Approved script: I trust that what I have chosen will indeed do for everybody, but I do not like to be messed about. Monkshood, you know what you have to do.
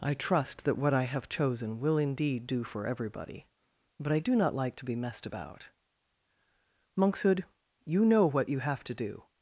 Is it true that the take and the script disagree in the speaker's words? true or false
false